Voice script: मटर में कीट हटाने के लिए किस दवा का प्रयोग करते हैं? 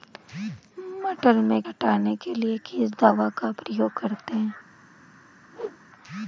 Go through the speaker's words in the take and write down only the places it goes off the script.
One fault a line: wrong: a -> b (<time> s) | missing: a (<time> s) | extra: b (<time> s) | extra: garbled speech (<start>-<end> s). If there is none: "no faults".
missing: कीट (1.6 s)